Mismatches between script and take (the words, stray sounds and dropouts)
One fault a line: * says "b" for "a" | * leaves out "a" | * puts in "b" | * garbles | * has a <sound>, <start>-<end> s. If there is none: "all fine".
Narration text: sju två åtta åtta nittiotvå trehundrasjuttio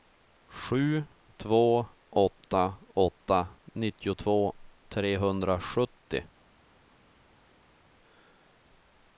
all fine